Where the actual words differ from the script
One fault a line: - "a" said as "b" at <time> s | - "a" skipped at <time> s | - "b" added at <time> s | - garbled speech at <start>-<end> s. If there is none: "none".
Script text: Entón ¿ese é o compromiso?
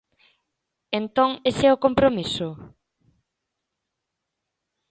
none